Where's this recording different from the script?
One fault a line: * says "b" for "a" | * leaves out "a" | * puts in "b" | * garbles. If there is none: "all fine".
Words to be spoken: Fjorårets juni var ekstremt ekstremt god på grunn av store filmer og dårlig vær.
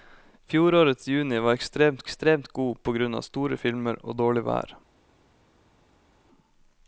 all fine